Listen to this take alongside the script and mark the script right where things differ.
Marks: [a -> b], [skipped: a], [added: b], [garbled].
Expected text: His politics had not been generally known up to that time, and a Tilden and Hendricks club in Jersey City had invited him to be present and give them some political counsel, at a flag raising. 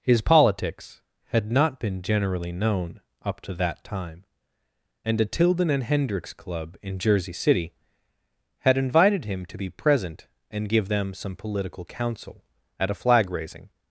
His politics had not been generally known up to that time, and a Tilden and Hendricks club in Jersey City had invited him to be present and give them some political counsel, at a flag raising.